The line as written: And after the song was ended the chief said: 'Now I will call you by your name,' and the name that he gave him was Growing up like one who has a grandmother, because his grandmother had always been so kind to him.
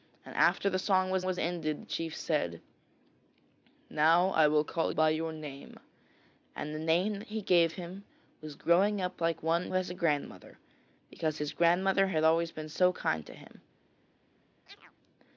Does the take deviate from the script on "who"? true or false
true